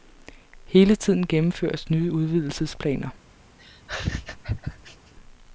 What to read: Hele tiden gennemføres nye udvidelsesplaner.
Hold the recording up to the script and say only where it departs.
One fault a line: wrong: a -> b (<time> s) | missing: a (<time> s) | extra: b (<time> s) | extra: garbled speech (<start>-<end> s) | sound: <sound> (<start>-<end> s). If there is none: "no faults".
sound: laugh (3.6-5.1 s)